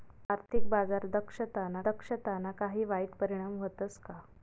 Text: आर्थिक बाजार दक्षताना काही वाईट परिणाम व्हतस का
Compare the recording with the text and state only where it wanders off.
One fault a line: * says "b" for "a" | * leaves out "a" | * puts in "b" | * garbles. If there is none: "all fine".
* puts in "दक्षताना"